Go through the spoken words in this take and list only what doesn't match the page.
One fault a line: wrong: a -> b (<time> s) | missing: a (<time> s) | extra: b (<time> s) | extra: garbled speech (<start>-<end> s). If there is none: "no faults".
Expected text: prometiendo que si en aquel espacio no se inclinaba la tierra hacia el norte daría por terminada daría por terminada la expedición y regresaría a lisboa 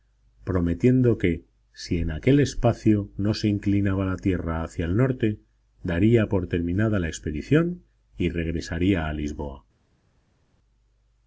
missing: daría por terminada (7.0 s)